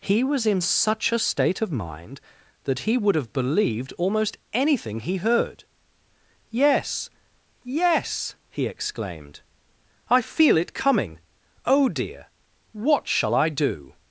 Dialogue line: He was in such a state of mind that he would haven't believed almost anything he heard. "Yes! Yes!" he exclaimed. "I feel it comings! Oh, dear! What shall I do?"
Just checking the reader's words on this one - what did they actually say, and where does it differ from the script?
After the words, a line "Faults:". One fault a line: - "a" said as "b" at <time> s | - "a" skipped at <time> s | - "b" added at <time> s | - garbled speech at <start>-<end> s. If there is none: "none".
He was in such a state of mind that he would have believed almost anything he heard. "Yes! Yes!" he exclaimed. "I feel it coming! Oh, dear! What shall I do?"
Faults:
- "haven't" said as "have" at 3.1 s
- "comings" said as "coming" at 10.7 s